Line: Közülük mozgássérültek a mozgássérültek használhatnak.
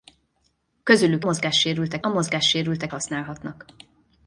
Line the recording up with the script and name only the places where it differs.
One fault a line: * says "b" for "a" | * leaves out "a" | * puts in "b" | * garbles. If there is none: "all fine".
all fine